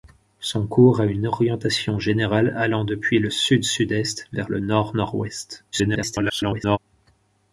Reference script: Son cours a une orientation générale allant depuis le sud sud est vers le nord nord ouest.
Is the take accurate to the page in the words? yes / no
no